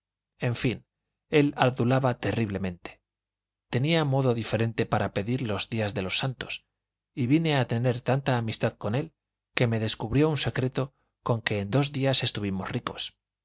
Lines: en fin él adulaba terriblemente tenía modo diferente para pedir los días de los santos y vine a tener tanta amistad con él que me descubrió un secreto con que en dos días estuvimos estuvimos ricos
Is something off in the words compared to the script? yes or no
yes